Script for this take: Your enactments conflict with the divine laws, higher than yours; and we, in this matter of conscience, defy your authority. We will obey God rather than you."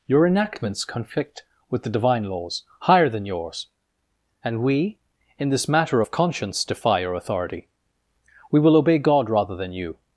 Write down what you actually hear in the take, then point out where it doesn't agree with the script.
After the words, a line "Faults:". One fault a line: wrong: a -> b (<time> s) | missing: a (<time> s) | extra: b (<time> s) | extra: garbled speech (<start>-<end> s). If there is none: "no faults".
Your enactments conflict with the divine laws, higher than yours; and we, in this matter of conscience, defy your authority. We will obey God rather than you."
Faults:
no faults